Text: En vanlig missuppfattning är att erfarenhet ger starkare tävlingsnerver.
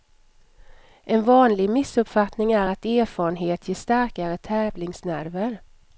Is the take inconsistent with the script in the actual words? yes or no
no